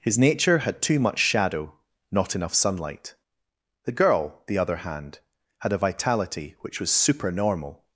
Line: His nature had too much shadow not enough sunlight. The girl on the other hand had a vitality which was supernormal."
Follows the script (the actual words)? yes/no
no